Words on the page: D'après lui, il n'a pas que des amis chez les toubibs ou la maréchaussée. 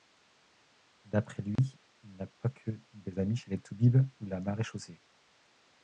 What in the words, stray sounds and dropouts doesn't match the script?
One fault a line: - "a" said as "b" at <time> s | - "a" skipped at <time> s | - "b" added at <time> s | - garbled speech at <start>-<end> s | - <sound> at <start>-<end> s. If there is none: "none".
- dropout at 1.6-1.6 s